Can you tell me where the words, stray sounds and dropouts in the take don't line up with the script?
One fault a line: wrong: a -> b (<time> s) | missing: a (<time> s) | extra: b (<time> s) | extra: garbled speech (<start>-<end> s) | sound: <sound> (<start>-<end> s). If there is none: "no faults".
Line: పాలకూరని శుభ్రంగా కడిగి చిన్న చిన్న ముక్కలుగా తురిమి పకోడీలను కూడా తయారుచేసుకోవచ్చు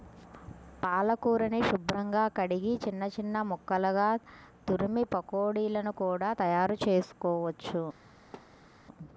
sound: thud (8.3-8.7 s)